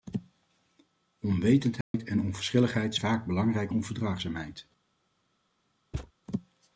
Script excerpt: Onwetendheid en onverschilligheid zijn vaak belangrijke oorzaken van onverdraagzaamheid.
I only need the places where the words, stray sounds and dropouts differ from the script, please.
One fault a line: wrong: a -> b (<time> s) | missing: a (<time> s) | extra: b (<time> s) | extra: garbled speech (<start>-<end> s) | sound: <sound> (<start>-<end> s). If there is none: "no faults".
sound: dropout (1.8-1.9 s)
missing: zijn (3.0 s)
missing: oorzaken van (3.7 s)
sound: thud (5.9-6.1 s)